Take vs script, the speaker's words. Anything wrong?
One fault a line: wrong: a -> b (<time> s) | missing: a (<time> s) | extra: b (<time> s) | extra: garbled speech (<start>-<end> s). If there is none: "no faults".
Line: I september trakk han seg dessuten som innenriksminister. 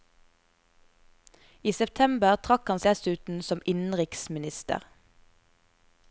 missing: seg (2.8 s)